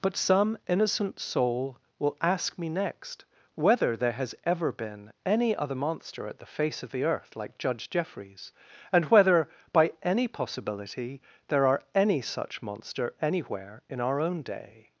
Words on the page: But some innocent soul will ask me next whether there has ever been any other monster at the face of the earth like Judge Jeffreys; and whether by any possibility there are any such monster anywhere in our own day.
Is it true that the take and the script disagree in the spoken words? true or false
false